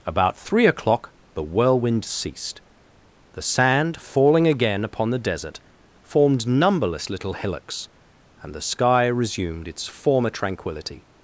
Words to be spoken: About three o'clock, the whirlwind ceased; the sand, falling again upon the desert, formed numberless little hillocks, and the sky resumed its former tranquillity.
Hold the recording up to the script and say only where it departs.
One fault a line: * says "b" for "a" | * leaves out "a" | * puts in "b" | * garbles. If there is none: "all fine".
all fine